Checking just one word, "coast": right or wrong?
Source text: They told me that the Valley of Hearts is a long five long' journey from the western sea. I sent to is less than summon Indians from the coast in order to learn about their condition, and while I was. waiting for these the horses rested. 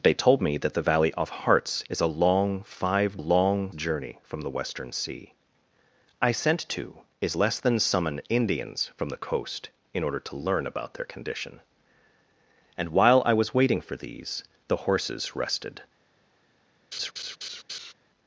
right